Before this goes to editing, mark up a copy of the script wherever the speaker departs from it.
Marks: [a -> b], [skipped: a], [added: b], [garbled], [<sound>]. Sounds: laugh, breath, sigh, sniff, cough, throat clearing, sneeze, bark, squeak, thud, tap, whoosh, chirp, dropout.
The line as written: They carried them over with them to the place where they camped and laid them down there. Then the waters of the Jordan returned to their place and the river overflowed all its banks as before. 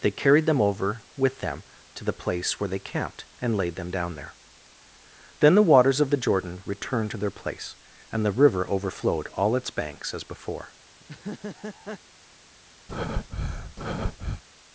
They carried them over with them to the place where they camped and laid them down there. Then the waters of the Jordan returned to their place and the river overflowed all its banks as before. [laugh] [breath]